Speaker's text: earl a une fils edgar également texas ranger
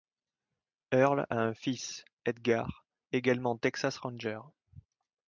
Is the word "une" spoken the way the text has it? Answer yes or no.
no